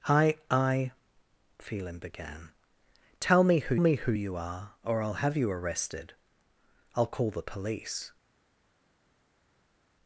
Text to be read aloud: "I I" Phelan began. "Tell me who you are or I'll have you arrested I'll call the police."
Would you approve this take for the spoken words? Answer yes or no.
no